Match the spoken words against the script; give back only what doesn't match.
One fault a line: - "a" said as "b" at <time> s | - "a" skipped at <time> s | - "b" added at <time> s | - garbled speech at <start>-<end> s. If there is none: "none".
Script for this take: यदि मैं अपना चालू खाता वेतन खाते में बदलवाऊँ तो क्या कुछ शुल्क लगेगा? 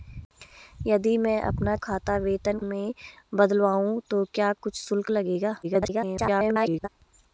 - "चालू" skipped at 1.8 s
- "खाते" skipped at 2.6 s
- garbled speech at 5.6-6.9 s